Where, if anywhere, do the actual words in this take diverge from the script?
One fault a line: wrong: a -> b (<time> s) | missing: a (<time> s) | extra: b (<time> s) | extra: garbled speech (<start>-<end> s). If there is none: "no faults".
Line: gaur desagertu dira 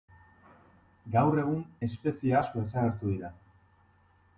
extra: egun espezie asko (1.4 s)